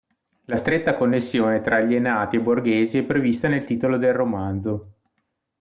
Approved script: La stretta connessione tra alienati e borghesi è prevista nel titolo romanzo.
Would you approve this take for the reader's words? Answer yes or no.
no